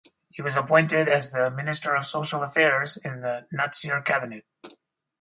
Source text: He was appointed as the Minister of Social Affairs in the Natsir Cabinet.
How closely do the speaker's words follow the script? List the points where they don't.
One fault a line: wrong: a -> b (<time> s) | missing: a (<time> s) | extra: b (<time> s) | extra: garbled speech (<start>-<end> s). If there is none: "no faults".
no faults